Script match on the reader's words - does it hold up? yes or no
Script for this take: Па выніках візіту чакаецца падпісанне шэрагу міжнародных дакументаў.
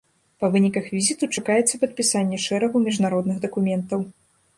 yes